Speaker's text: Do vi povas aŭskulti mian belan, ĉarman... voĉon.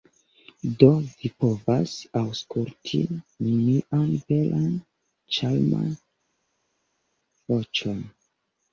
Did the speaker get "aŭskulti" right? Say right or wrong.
right